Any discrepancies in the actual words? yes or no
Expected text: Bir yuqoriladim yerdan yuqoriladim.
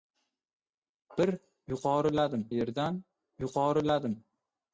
no